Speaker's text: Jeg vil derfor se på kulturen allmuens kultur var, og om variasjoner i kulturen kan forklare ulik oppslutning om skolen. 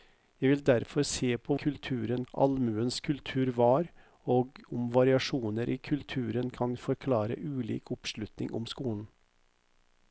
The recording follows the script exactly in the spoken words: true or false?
true